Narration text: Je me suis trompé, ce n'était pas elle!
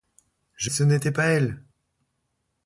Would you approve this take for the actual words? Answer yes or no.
no